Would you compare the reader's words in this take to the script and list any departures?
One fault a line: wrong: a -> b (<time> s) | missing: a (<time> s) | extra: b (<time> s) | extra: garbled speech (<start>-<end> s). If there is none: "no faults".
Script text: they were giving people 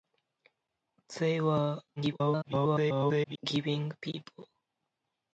extra: garbled speech (2.0-3.4 s)